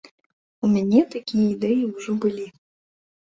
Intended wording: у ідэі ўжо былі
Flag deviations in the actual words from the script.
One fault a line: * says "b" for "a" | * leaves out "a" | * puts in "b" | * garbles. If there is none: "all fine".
* puts in "мяне такія"